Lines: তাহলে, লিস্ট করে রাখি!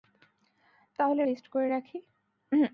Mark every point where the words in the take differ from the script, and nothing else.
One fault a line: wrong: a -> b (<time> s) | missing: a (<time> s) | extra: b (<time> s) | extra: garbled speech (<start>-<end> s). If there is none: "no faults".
no faults